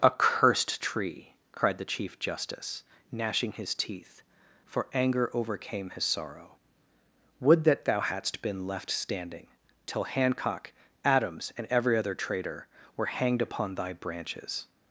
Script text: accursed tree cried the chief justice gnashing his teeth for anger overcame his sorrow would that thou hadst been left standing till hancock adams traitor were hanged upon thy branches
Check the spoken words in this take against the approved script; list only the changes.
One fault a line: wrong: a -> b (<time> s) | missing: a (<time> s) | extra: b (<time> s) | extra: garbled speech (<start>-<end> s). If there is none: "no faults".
extra: and every other (11.6 s)